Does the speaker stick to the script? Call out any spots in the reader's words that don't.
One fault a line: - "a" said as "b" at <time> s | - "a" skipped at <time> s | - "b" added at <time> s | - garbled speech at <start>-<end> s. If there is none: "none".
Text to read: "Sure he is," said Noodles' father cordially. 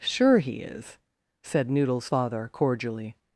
none